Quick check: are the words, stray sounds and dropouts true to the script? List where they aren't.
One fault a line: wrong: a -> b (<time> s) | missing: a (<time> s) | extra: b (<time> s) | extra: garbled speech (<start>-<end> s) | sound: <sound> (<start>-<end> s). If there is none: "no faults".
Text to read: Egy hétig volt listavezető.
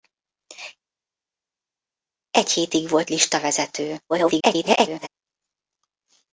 extra: garbled speech (4.1-5.1 s)